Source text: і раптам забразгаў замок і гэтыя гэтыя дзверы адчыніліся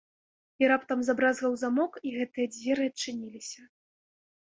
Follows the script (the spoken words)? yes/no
no